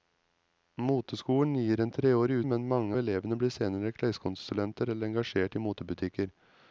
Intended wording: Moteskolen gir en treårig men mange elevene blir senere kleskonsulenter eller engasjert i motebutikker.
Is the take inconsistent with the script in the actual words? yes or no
no